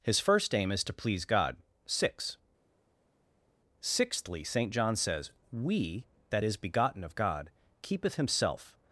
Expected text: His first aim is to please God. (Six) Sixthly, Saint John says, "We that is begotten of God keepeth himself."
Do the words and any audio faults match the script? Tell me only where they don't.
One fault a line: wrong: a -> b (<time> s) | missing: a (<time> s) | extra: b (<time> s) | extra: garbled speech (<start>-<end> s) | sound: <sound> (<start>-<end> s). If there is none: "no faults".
no faults